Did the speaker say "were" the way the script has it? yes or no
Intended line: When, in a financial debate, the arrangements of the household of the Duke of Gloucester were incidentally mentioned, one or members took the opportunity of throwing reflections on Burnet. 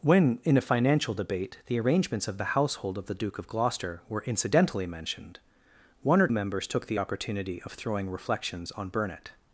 yes